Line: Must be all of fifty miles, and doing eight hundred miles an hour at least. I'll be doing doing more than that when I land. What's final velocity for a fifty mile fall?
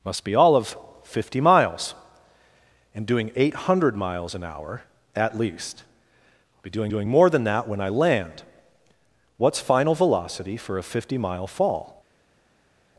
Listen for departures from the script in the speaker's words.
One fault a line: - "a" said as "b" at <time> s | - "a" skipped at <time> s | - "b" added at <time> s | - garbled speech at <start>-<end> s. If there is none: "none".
none